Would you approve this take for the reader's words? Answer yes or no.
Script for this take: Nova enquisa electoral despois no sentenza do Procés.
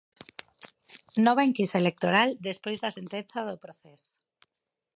no